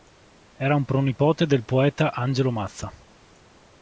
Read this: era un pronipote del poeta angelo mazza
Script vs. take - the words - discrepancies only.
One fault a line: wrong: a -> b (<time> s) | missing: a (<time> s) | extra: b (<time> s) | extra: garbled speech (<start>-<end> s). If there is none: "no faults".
no faults